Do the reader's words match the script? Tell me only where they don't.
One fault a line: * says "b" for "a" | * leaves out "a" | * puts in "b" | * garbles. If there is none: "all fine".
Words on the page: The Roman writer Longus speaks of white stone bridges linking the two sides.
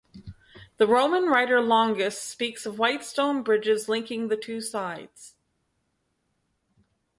all fine